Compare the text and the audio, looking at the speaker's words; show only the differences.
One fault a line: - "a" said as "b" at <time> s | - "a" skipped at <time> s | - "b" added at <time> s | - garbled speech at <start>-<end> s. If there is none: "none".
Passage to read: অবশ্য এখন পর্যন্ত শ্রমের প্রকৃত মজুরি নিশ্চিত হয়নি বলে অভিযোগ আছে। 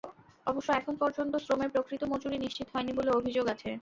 none